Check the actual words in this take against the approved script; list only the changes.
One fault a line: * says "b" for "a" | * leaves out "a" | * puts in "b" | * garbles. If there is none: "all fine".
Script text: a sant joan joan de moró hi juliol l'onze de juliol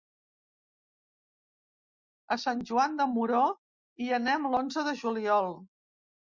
* leaves out "joan"
* says "anem" for "juliol"